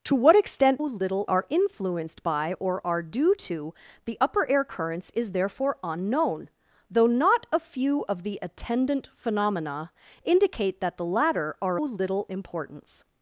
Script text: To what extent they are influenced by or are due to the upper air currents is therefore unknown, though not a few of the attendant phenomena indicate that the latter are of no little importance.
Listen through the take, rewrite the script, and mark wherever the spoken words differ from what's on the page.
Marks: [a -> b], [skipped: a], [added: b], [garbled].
To what extent [they -> little] are influenced by or are due to the upper air currents is therefore unknown, though not a few of the attendant phenomena indicate that the latter are [skipped: of no] little importance.